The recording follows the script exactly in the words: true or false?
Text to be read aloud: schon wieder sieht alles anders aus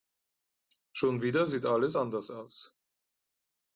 true